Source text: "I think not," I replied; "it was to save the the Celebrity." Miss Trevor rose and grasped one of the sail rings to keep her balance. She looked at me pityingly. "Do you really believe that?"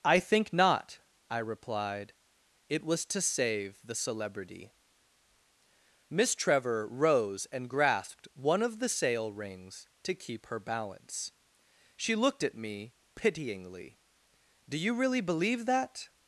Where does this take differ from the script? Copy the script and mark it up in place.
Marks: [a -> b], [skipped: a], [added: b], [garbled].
"I think not," I replied; "it was to save the [skipped: the] Celebrity." Miss Trevor rose and grasped one of the sail rings to keep her balance. She looked at me pityingly. "Do you really believe that?"